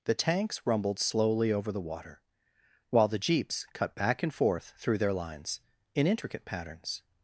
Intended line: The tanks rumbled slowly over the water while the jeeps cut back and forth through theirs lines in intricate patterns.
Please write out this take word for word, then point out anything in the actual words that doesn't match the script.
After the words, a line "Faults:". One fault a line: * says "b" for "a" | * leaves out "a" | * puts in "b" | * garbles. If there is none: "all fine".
The tanks rumbled slowly over the water while the jeeps cut back and forth through their lines in intricate patterns.
Faults:
* says "their" for "theirs"